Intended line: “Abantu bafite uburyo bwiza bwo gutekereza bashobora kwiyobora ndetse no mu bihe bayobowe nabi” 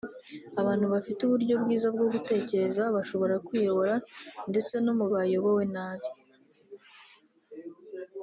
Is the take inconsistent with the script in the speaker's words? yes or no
yes